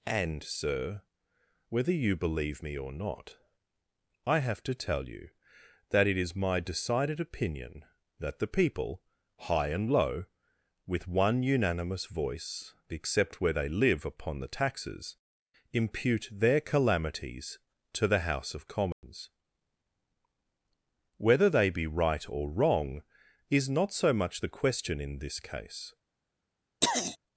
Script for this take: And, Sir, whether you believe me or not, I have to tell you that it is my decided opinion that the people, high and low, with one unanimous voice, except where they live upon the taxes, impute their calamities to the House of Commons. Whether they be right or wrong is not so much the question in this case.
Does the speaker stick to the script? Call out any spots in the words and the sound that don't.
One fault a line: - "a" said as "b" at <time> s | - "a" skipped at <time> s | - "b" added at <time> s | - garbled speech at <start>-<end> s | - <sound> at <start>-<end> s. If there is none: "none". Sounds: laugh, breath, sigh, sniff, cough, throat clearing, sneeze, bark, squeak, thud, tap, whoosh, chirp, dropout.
- dropout at 18.9-19.0 s
- throat clearing at 26.8-27.2 s